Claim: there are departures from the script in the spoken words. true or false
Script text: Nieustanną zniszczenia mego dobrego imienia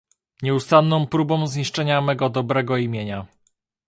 true